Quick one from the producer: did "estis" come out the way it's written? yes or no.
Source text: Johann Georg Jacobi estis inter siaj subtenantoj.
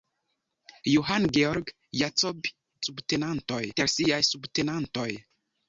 no